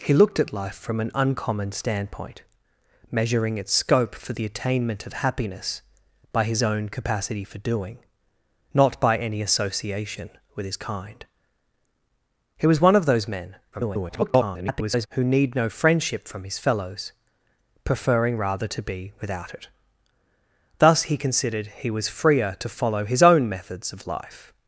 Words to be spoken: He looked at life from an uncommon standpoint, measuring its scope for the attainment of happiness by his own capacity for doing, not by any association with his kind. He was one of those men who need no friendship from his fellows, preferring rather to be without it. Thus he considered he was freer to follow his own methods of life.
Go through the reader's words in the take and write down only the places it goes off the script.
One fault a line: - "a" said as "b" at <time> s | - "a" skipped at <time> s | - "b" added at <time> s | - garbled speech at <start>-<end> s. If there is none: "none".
- garbled speech at 13.7-15.1 s